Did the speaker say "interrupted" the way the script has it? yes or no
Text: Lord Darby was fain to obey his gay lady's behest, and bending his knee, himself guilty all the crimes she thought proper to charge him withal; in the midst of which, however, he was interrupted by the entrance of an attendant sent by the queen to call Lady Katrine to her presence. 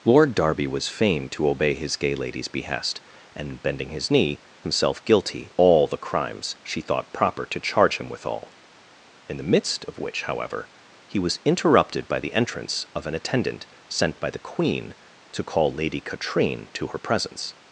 yes